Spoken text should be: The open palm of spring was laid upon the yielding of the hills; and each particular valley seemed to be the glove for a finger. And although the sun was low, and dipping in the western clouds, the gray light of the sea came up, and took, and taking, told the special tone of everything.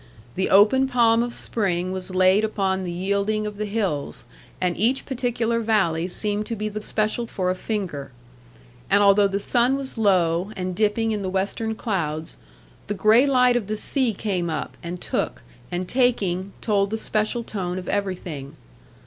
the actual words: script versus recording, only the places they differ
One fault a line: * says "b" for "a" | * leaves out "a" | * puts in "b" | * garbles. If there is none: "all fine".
* says "special" for "glove"